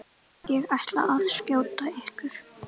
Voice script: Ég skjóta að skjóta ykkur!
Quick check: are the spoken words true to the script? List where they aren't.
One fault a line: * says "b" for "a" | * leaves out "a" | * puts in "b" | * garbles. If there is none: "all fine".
* says "ætla" for "skjóta"